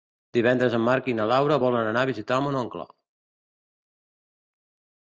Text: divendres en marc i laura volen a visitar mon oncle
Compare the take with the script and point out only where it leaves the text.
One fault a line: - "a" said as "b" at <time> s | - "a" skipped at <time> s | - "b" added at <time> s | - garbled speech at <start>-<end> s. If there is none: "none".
- "na" added at 1.2 s
- "anar" added at 1.9 s